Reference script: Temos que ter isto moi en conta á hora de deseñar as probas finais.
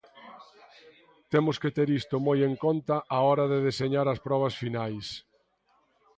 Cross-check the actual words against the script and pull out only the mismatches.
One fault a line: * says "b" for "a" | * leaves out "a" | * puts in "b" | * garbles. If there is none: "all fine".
all fine